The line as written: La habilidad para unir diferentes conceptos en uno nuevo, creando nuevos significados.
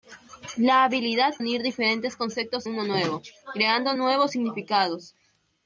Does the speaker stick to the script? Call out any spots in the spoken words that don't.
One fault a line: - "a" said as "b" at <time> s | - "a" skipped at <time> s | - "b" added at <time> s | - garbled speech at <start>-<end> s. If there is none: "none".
- "para" skipped at 1.4 s
- "en" skipped at 2.7 s